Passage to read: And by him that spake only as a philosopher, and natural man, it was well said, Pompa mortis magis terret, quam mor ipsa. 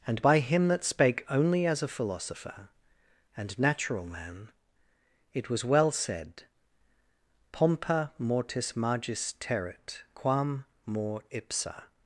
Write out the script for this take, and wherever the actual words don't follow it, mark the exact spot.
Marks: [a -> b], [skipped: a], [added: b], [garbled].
And by him that spake only as a philosopher, and natural man, it was well said, Pompa mortis magis terret, quam mor ipsa.